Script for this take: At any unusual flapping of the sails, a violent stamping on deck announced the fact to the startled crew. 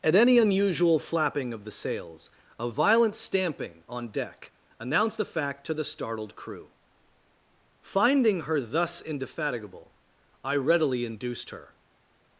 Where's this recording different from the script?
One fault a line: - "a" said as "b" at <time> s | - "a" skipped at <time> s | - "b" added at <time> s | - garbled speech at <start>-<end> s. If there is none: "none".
- "Finding her thus indefatigable I readily induced her" added at 7.8 s